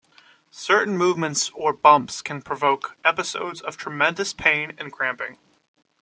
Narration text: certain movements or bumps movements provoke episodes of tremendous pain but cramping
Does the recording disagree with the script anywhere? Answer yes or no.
yes